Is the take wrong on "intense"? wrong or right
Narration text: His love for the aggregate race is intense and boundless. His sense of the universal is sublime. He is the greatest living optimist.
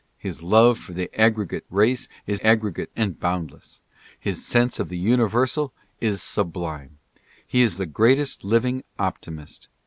wrong